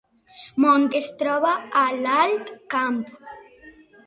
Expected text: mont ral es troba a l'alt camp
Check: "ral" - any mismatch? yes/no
yes